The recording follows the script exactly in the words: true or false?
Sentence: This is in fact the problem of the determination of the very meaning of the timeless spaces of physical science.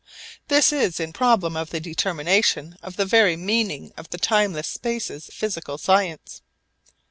false